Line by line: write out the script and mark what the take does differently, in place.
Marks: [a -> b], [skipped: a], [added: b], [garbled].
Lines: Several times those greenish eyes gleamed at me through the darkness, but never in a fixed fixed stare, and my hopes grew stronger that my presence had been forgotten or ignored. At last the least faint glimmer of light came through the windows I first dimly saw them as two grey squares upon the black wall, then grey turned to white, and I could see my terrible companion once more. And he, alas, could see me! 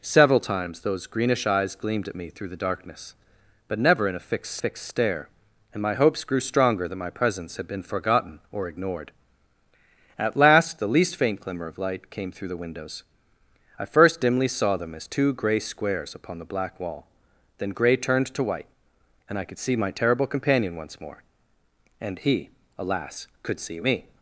Several times those greenish eyes gleamed at me through the darkness, but never in a fixed fixed stare, and my hopes grew stronger that my presence had been forgotten or ignored. At last the least faint glimmer of light came through the windows I first dimly saw them as two grey squares upon the black wall, then grey turned to white, and I could see my terrible companion once more. And he, alas, could see me!